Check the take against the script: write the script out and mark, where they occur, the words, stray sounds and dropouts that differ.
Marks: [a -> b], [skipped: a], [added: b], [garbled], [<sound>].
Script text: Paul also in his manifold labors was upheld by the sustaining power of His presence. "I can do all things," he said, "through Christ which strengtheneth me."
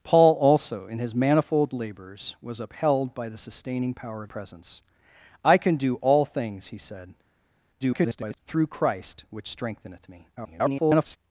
Paul also in his manifold labors was upheld by the sustaining power of [skipped: His] presence. "I can do all things," he said, [garbled] "through Christ which strengtheneth me." [garbled]